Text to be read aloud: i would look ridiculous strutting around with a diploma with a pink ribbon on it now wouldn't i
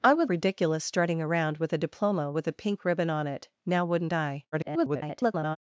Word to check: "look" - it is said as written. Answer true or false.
false